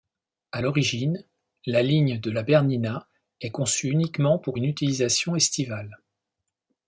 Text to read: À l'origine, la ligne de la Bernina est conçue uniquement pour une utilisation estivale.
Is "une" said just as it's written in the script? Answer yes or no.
yes